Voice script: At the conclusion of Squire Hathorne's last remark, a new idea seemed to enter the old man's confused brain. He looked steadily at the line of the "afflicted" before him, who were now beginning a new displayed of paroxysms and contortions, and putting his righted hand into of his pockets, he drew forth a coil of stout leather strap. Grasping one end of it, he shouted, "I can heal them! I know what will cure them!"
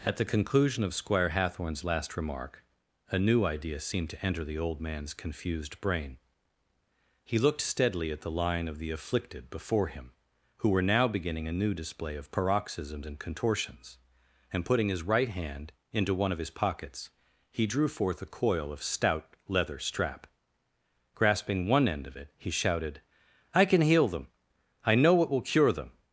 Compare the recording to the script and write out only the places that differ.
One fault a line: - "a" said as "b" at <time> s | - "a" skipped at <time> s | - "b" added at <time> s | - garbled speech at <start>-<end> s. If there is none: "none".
- "displayed" said as "display" at 11.8 s
- "righted" said as "right" at 15.0 s
- "one" added at 16.1 s